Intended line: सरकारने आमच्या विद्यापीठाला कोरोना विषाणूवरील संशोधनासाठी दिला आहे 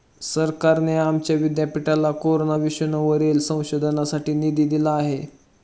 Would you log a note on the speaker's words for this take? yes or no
yes